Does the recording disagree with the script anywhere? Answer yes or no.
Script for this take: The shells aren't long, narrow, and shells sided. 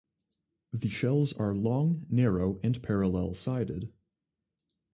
yes